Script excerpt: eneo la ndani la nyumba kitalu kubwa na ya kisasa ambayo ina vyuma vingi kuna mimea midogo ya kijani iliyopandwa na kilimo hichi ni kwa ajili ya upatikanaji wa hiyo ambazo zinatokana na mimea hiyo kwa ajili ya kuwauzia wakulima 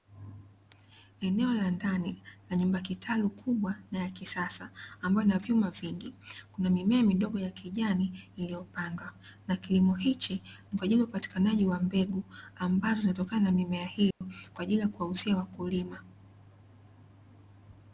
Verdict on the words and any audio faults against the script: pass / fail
fail